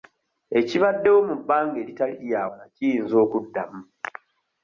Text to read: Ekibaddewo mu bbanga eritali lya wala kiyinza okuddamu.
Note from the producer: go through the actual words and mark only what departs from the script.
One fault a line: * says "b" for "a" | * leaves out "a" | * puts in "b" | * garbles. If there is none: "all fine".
all fine